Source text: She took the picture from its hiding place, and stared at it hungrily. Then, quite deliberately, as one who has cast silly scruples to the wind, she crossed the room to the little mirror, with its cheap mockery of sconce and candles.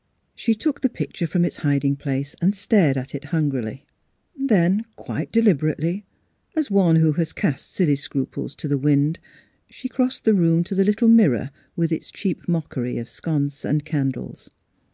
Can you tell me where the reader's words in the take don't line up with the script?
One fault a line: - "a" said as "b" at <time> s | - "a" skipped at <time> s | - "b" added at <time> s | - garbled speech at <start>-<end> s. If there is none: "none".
none